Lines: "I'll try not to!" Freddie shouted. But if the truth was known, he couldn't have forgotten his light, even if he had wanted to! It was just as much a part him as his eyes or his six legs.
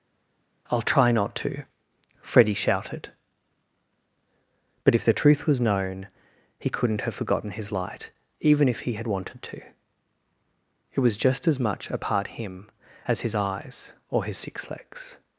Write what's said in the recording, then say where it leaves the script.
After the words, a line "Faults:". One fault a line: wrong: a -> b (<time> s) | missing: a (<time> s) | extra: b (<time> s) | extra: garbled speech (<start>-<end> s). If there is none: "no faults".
"I'll try not to!" Freddie shouted. But if the truth was known, he couldn't have forgotten his light, even if he had wanted to! It was just as much a part him as his eyes or his six legs.
Faults:
no faults